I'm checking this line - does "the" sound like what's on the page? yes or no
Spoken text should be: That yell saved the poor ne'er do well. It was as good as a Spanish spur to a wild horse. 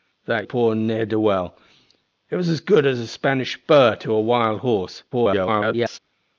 no